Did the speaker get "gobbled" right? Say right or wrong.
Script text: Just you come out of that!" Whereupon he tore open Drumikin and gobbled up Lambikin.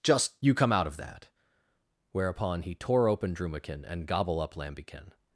wrong